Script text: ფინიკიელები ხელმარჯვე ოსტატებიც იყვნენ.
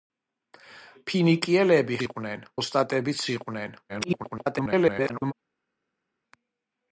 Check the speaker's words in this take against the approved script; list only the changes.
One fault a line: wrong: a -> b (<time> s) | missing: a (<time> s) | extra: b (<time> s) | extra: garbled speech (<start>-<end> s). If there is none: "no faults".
wrong: ხელმარჯვე -> იყვნენ (2.0 s)
extra: garbled speech (3.9-5.3 s)